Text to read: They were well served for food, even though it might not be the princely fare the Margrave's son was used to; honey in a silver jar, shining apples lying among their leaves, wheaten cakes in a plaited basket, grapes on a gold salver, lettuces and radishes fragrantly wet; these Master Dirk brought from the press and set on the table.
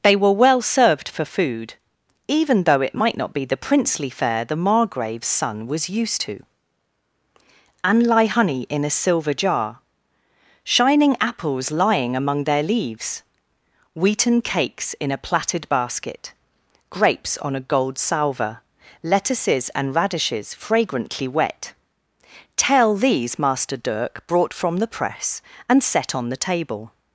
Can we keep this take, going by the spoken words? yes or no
no